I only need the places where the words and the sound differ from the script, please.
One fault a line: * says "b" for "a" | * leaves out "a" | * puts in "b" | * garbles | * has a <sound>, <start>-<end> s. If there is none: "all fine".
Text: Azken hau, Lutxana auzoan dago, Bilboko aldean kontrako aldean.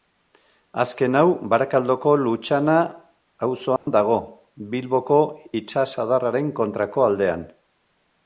* puts in "Barakaldoko"
* has a dropout, 3.8-3.9 s
* says "itsasadarraren" for "aldean"